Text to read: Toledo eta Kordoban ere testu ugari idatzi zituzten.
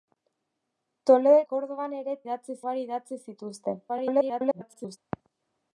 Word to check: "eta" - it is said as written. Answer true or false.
false